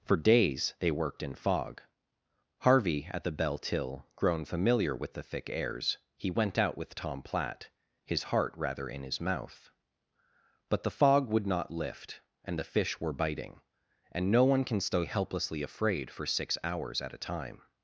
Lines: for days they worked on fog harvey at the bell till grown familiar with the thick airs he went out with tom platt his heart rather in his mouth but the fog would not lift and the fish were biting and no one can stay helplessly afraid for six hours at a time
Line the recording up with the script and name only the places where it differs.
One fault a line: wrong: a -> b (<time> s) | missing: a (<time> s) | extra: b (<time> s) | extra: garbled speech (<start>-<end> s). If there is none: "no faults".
wrong: on -> in (1.2 s)